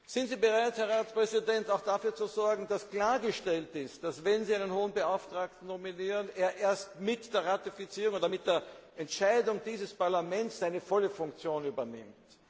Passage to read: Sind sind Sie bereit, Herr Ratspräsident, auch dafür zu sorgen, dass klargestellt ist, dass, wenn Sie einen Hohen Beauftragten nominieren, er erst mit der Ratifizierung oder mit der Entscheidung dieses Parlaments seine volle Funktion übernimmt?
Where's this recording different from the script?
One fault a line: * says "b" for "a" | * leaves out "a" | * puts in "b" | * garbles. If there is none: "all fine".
* leaves out "sind"